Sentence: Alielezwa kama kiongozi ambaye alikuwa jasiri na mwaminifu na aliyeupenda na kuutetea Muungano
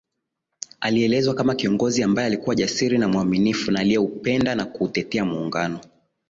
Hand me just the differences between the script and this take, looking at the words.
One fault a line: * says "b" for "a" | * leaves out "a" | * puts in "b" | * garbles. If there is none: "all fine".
all fine